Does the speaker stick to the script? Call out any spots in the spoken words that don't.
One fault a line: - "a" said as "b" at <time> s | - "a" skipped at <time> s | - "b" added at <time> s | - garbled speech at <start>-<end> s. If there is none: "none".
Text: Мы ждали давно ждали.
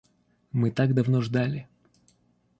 - "ждали" said as "так" at 0.7 s